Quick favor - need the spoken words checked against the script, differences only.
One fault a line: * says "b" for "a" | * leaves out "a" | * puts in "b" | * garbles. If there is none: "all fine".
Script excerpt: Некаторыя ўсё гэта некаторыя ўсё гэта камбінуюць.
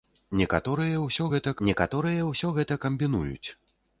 all fine